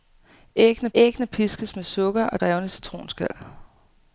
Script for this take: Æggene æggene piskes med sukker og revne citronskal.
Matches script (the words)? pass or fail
pass